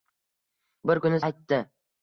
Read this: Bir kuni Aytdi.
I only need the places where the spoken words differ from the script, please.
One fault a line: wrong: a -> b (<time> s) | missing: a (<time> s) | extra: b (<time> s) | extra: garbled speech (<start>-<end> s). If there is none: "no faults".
no faults